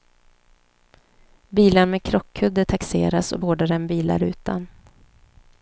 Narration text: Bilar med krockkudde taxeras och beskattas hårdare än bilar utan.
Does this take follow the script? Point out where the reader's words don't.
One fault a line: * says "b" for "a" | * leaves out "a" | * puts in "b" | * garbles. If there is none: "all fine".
* leaves out "beskattas"